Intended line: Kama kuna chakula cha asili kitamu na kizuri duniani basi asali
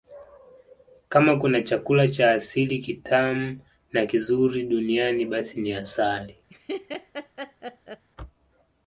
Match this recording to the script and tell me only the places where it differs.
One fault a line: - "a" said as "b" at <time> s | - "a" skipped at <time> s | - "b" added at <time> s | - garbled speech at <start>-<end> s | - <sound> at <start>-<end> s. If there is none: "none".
- "ni" added at 5.6 s
- laugh at 6.5-8.0 s